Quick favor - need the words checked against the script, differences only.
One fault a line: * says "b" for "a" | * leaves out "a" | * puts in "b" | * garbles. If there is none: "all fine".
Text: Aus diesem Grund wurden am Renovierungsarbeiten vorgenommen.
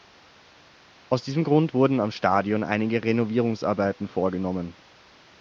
* puts in "Stadion einige"